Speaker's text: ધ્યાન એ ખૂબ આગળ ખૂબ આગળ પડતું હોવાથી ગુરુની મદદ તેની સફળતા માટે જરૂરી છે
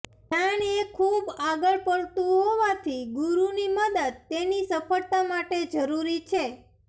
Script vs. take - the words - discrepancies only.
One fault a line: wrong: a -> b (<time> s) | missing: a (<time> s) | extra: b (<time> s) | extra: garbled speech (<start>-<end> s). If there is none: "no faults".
missing: ખૂબ આગળ (1.8 s)